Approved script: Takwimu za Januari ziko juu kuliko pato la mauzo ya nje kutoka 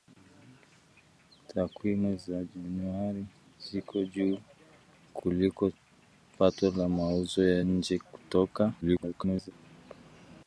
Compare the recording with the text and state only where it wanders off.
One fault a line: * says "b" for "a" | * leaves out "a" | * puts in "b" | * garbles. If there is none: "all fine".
* garbles